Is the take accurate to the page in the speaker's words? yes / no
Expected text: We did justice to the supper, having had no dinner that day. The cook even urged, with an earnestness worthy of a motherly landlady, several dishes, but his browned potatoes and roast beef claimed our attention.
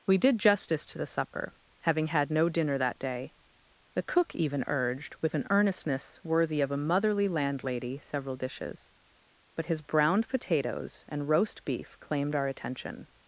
yes